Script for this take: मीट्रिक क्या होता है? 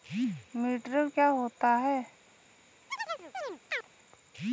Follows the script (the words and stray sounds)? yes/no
no